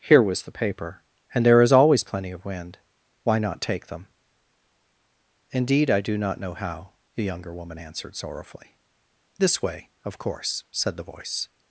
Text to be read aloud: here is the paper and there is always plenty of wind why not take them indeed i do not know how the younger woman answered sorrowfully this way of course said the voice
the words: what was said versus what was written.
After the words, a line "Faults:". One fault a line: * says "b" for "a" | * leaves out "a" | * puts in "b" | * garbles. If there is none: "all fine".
here was the paper and there is always plenty of wind why not take them indeed i do not know how the younger woman answered sorrowfully this way of course said the voice
Faults:
* says "was" for "is"